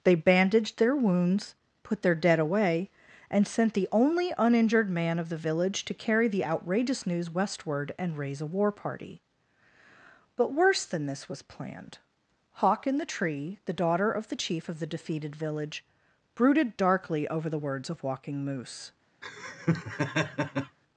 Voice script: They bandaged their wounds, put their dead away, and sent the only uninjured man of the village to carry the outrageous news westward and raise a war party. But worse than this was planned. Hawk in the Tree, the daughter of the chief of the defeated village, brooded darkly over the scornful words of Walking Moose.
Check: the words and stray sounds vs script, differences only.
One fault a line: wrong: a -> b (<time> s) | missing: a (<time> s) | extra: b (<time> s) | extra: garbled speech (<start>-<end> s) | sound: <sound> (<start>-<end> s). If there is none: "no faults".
missing: scornful (17.6 s)
sound: laugh (19.2-20.8 s)